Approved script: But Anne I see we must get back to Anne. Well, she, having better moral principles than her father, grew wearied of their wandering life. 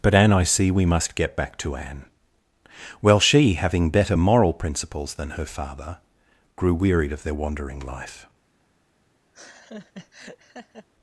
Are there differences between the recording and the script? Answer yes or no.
no